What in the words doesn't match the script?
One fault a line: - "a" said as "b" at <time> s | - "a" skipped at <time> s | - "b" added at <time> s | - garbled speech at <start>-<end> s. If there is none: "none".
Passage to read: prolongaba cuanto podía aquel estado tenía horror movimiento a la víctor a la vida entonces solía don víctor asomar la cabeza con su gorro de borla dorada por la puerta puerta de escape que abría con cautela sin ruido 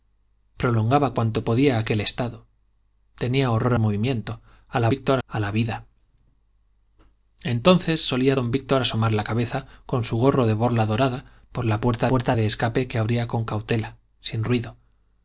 none